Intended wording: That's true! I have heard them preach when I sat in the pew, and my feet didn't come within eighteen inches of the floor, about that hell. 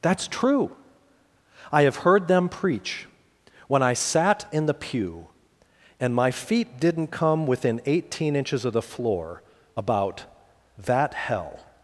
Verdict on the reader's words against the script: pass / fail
pass